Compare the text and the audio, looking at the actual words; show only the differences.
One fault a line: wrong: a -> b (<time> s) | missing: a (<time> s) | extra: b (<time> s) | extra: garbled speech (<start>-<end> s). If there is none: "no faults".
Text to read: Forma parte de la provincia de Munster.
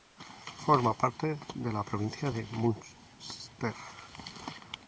no faults